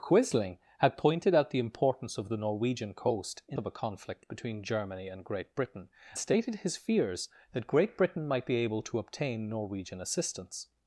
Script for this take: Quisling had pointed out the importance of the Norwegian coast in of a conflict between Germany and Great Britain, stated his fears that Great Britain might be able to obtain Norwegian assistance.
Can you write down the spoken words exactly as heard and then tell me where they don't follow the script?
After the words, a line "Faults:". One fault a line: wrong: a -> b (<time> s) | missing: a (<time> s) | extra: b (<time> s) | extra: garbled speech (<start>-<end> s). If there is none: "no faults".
Quisling had pointed out the importance of the Norwegian coast in of a conflict between Germany and Great Britain, stated his fears that Great Britain might be able to obtain Norwegian assistance.
Faults:
no faults